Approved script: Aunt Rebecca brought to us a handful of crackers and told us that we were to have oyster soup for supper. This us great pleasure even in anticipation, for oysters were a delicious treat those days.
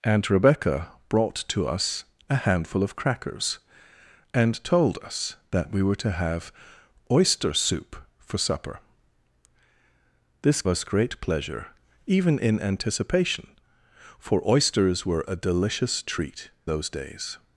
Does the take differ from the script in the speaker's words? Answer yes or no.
no